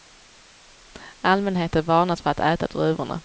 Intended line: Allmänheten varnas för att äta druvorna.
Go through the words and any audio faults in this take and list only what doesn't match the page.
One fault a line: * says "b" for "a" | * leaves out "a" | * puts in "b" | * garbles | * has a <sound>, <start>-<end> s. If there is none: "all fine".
all fine